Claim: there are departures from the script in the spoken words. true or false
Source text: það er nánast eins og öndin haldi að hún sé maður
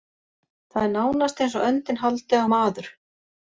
true